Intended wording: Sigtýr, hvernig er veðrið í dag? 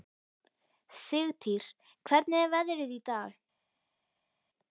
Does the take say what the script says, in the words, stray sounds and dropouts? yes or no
yes